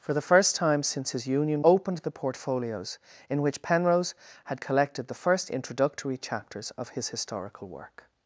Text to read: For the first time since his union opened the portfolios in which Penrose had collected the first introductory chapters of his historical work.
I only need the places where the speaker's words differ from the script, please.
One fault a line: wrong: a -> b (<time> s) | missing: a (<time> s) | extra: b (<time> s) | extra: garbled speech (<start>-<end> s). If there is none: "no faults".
no faults